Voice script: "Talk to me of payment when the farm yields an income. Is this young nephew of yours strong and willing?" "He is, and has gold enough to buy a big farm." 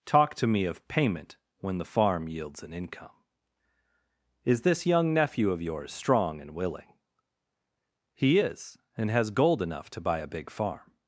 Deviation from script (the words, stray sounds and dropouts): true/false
false